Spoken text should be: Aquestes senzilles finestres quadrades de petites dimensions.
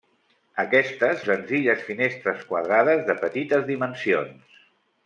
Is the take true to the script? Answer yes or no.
yes